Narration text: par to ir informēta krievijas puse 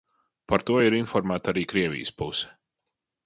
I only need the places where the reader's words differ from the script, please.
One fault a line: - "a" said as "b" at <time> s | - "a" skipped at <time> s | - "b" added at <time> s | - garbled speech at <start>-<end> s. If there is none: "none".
- "arī" added at 1.5 s